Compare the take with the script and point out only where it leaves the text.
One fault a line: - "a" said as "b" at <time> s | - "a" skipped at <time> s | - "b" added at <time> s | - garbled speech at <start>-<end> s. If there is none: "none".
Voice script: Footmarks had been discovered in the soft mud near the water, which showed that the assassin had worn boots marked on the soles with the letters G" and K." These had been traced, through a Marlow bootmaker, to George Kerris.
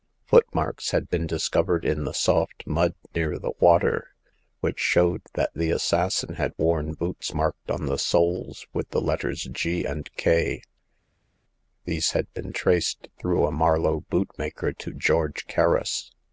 none